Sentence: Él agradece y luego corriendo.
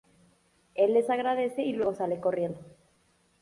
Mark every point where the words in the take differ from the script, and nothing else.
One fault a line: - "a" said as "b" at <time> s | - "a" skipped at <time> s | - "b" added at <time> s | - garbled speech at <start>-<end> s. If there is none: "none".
- "les" added at 0.9 s
- "sale" added at 1.9 s